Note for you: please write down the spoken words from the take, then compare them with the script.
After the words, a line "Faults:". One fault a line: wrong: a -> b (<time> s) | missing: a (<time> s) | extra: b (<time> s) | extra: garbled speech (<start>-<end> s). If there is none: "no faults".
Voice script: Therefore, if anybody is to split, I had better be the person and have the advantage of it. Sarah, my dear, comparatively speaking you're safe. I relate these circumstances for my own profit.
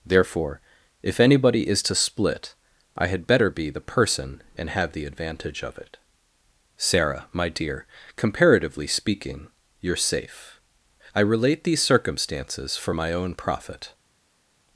Therefore, if anybody is to split, I had better be the person and have the advantage of it. Sarah, my dear, comparatively speaking you're safe. I relate these circumstances for my own profit.
Faults:
no faults